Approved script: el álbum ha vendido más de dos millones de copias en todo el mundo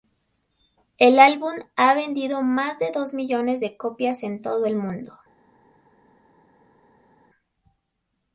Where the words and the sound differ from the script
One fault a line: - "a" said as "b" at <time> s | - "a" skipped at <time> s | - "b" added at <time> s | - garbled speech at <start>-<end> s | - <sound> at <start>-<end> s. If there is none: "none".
none